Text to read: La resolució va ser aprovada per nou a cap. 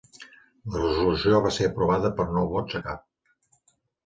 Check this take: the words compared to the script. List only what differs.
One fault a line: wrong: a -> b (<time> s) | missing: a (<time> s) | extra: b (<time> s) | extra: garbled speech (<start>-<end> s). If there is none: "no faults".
extra: vots (2.5 s)